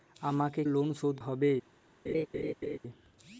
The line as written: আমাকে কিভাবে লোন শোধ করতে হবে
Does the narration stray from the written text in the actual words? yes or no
yes